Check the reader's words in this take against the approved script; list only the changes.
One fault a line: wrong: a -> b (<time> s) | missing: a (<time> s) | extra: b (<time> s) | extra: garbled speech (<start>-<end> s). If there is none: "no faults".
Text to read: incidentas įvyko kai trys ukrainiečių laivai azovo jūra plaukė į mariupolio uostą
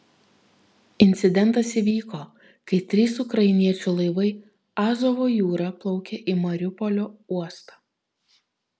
no faults